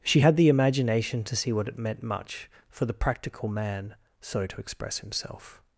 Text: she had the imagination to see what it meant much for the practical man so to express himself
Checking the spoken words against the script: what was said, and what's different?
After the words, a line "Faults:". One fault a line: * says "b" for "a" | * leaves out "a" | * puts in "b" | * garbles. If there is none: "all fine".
she had the imagination to see what it meant much for the practical man so to express himself
Faults:
all fine